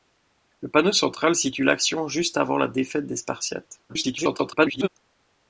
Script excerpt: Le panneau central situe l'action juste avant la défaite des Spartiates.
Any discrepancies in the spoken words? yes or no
yes